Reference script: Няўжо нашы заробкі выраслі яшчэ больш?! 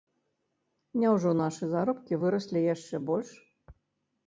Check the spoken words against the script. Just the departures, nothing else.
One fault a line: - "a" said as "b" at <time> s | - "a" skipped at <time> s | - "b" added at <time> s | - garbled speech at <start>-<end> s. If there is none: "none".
none